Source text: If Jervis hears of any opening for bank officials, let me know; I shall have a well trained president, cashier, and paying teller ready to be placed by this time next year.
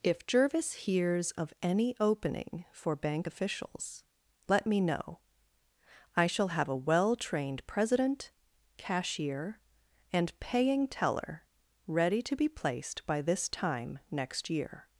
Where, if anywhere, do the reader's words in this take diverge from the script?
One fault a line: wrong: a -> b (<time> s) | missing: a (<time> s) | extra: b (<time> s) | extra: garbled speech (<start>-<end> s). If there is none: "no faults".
no faults